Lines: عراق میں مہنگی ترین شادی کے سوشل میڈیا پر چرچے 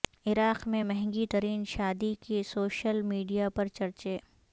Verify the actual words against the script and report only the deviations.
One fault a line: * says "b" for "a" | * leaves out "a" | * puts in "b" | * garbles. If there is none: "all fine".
all fine